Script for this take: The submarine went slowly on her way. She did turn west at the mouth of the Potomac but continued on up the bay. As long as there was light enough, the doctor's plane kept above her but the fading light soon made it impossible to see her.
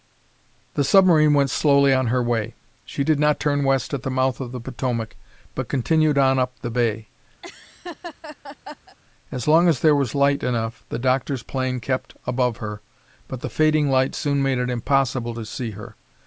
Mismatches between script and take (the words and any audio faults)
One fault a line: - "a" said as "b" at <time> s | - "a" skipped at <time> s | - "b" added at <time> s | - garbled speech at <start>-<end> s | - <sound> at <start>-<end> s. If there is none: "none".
- "not" added at 3.2 s
- laugh at 7.4-9.0 s